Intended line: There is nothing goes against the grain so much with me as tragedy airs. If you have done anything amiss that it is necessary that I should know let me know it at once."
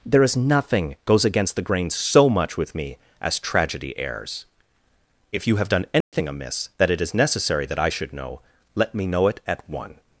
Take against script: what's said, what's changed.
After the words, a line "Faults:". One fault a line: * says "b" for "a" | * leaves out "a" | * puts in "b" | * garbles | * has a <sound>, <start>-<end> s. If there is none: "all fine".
There is nothing goes against the grain so much with me as tragedy airs. If you have done anything amiss that it is necessary that I should know let me know it at one."
Faults:
* has a dropout, 6.0-6.1 s
* says "one" for "once"